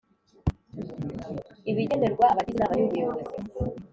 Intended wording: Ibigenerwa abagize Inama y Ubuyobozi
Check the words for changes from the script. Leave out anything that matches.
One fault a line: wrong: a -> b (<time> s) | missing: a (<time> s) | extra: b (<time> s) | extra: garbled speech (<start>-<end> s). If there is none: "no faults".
no faults